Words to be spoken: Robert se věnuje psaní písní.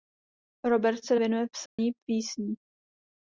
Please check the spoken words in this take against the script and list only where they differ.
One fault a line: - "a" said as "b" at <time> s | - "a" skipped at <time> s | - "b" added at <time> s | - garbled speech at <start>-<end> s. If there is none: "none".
none